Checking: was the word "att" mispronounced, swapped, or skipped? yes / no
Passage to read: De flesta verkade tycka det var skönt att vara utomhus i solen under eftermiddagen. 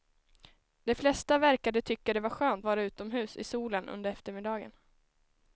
yes